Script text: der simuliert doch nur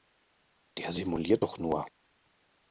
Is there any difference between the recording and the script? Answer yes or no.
no